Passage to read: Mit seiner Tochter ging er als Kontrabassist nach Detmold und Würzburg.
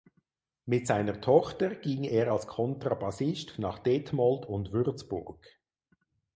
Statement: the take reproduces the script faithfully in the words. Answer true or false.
true